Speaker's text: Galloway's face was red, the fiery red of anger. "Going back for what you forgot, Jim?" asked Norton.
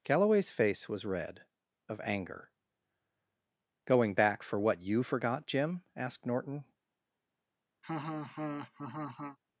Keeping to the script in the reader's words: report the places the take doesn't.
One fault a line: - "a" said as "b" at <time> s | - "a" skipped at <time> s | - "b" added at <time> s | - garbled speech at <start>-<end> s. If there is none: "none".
- "the fiery red" skipped at 1.4 s